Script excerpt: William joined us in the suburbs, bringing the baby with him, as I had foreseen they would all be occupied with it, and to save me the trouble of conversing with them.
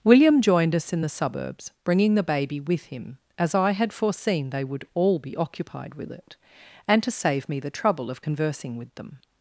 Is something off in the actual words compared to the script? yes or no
no